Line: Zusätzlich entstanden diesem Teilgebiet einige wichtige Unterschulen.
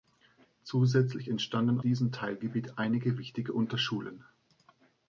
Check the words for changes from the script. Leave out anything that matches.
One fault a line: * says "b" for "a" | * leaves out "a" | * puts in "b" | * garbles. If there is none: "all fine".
all fine